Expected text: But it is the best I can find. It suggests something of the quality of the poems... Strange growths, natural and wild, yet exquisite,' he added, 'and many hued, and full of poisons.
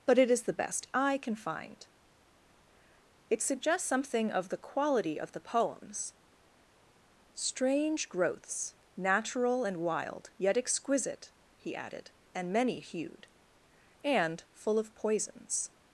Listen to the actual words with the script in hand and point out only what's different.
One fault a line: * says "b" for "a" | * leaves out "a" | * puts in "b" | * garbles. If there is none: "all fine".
all fine